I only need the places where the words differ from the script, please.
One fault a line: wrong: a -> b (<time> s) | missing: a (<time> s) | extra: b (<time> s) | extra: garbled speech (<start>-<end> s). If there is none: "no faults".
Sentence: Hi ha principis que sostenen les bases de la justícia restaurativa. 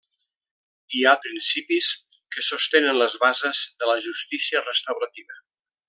no faults